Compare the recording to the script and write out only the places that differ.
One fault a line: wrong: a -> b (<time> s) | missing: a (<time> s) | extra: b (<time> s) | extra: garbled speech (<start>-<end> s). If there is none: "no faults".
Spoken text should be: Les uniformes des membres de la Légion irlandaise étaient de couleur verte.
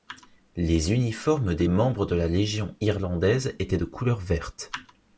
no faults